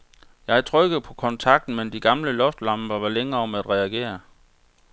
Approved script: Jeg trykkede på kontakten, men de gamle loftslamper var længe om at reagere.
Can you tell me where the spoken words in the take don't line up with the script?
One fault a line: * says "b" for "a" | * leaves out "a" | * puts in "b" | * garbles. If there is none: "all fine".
all fine